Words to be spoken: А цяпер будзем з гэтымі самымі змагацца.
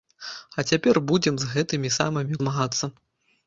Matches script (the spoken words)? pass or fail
pass